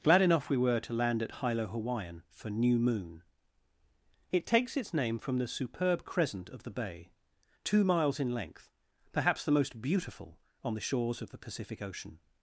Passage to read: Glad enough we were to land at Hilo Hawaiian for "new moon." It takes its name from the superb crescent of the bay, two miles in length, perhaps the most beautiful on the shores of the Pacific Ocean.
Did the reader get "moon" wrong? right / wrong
right